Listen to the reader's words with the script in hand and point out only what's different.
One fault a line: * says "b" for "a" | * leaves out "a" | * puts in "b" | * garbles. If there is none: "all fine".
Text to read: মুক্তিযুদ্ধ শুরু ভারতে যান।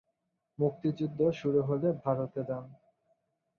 * puts in "হলে"